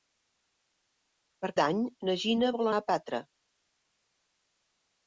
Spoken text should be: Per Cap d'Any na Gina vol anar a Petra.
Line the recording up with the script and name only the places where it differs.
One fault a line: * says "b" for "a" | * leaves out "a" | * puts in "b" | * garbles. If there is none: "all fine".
* leaves out "Cap"
* leaves out "anar"